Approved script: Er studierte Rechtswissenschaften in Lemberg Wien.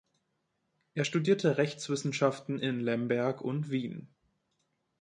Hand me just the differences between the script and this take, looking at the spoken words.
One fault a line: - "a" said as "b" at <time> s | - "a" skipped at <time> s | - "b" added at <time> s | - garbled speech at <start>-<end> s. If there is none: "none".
- "und" added at 3.4 s